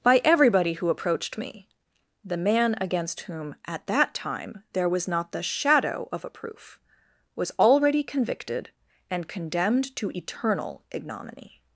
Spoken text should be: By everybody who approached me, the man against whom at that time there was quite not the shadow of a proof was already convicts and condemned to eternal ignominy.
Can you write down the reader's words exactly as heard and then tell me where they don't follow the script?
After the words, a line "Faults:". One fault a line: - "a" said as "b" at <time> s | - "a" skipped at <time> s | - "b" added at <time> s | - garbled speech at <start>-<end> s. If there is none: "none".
By everybody who approached me, the man against whom at that time there was not the shadow of a proof was already convicted and condemned to eternal ignominy.
Faults:
- "quite" skipped at 5.1 s
- "convicts" said as "convicted" at 8.0 s